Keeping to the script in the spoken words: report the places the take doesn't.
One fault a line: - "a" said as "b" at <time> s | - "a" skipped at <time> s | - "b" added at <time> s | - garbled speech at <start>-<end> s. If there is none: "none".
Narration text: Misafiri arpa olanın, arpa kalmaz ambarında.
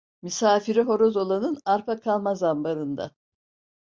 - "arpa" said as "horoz" at 0.8 s